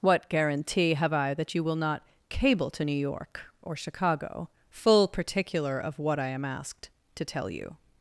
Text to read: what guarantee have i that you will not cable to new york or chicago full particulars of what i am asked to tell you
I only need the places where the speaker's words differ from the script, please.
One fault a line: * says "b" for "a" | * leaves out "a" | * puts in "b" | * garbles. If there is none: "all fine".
* says "particular" for "particulars"